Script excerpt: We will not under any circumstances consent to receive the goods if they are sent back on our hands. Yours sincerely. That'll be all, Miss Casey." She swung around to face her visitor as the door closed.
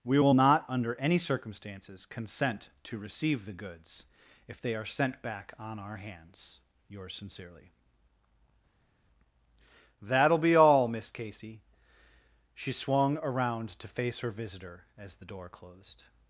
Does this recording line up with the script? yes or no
yes